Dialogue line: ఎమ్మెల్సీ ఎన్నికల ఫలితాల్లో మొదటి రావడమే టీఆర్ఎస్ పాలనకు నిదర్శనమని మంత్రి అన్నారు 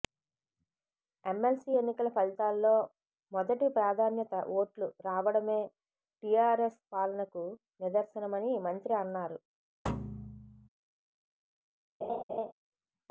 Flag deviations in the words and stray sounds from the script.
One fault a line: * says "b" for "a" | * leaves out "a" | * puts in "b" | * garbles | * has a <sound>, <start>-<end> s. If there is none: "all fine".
* puts in "ప్రాధాన్యత ఓట్లు"
* has a thud, 9.9-10.7 s
* has a laugh, 12.0-12.5 s